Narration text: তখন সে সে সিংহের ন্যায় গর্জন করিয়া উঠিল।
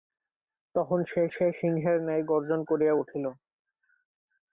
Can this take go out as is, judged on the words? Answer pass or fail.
pass